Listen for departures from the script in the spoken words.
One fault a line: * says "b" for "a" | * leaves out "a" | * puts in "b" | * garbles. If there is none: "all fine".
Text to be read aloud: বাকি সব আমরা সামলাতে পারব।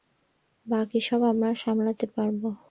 all fine